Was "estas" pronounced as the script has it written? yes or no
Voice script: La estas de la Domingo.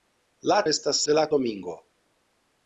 yes